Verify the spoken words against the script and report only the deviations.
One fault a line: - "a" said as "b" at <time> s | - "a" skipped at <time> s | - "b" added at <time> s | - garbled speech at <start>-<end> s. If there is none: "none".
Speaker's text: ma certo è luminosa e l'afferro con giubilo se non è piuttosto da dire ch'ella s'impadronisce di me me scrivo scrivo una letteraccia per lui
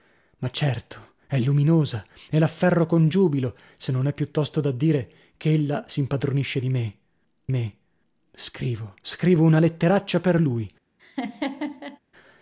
none